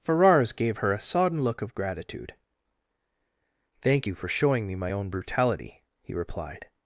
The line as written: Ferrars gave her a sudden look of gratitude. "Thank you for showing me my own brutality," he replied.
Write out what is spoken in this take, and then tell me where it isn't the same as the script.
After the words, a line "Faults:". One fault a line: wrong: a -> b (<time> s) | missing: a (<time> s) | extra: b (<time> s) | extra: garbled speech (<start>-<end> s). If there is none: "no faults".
Ferrars gave her a sodden look of gratitude. "Thank you for showing me my own brutality," he replied.
Faults:
wrong: sudden -> sodden (1.0 s)